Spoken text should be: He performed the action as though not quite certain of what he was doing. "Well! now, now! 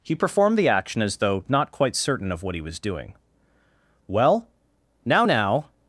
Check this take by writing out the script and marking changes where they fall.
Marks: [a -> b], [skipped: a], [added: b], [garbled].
He performed the action as though not quite certain of what he was doing. "Well! now, now!